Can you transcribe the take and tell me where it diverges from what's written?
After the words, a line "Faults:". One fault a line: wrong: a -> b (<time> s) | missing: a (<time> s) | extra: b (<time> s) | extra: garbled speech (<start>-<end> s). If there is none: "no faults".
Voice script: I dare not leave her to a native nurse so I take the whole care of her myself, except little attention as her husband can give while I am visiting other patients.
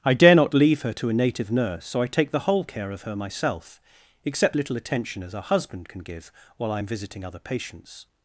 I dare not leave her to a native nurse so I take the whole care of her myself, except little attention as her husband can give while I am visiting other patients.
Faults:
no faults